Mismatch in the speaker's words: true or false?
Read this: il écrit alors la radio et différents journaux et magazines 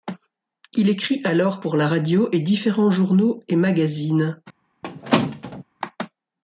true